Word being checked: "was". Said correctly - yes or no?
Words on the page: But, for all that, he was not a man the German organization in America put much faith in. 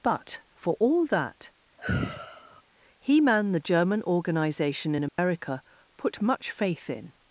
no